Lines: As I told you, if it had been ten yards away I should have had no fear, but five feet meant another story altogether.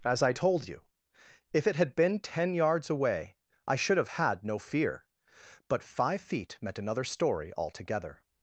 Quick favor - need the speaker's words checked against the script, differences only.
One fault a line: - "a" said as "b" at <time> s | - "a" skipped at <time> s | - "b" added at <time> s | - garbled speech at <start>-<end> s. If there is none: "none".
none